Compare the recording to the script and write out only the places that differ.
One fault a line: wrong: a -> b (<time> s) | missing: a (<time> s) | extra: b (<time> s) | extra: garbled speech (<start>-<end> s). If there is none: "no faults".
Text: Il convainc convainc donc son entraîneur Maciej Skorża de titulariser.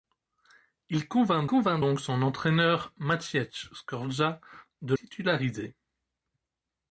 no faults